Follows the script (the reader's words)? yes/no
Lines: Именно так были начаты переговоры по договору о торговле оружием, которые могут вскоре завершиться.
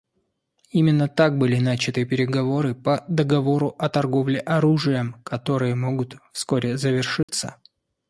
yes